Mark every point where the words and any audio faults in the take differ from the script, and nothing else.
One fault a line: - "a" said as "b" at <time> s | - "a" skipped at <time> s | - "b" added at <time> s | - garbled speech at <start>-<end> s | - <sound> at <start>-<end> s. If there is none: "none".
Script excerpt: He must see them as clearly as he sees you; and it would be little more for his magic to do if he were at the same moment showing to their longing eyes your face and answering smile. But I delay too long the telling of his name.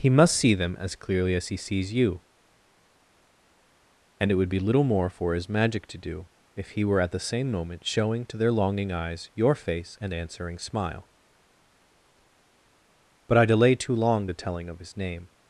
none